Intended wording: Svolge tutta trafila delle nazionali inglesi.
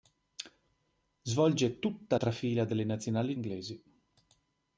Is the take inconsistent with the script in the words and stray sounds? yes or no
no